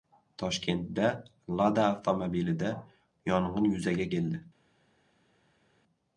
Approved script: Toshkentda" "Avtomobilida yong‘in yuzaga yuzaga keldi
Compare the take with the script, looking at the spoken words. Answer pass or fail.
fail